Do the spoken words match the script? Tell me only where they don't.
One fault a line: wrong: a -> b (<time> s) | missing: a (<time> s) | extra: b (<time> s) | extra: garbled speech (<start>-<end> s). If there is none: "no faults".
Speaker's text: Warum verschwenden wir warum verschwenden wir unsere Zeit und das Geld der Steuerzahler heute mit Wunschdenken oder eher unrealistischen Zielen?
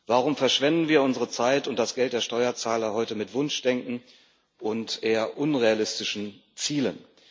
missing: warum verschwenden wir (1.0 s)
wrong: oder -> und (4.6 s)